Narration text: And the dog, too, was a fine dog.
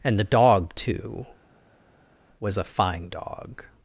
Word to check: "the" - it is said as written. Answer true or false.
true